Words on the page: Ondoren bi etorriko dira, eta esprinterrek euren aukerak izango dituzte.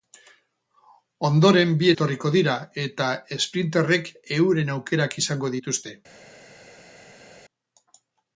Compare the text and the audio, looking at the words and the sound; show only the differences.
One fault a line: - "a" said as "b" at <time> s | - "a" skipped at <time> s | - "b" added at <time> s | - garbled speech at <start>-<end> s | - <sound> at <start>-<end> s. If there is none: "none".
none